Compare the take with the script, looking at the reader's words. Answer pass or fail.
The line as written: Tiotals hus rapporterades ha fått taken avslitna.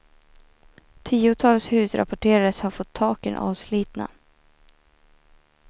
pass